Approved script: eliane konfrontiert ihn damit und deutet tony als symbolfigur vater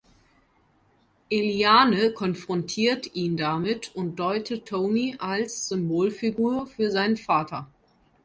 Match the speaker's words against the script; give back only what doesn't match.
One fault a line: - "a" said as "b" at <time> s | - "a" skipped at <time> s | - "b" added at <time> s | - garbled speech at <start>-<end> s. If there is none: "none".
- "für seinen" added at 6.7 s